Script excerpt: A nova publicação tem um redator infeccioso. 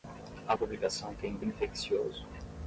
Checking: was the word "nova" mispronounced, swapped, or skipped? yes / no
yes